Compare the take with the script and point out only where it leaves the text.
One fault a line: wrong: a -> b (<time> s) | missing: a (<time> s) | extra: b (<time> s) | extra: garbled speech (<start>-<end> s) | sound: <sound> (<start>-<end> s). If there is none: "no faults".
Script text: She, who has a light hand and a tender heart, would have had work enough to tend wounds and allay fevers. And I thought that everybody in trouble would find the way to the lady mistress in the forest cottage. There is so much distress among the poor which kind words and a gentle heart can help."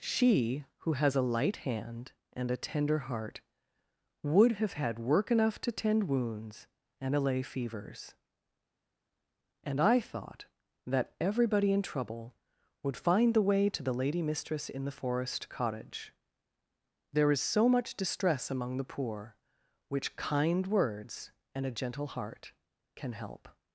no faults